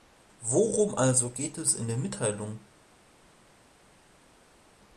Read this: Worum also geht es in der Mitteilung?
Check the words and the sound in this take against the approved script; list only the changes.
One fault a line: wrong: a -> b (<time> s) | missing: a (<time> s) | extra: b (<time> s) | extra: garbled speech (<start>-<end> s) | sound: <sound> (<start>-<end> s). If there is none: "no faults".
no faults